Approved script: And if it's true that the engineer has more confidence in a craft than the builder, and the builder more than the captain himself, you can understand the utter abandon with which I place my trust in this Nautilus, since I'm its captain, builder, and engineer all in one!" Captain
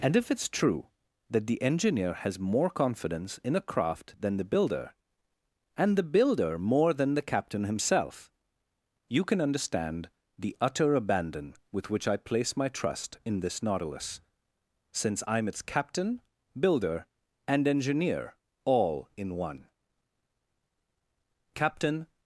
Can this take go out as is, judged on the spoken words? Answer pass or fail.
pass